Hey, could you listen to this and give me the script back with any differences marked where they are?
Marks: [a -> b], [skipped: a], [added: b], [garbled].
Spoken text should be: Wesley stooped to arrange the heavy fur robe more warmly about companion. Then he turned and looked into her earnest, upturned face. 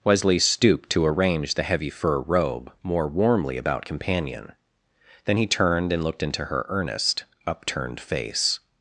Wesley stooped to arrange the heavy fur robe more warmly about companion. Then he turned and looked into her earnest, upturned face.